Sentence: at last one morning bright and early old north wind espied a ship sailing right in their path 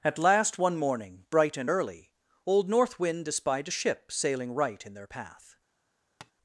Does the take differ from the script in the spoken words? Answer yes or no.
no